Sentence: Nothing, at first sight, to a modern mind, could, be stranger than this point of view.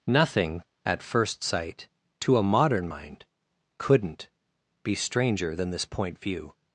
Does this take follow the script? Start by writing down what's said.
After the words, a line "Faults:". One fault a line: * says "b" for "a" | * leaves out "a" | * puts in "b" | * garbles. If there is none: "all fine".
Nothing, at first sight, to a modern mind, couldn't, be stranger than this point view.
Faults:
* says "couldn't" for "could"
* leaves out "of"